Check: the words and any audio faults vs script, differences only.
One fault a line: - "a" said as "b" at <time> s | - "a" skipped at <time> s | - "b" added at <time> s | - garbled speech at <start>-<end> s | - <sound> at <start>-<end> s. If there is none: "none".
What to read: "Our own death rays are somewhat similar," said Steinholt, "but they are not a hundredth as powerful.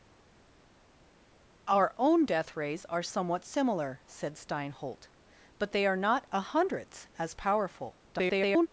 - garbled speech at 8.1-8.7 s